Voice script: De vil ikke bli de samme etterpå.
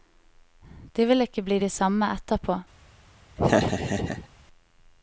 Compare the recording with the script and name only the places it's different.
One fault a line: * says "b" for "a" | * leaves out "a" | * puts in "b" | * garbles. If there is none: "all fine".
all fine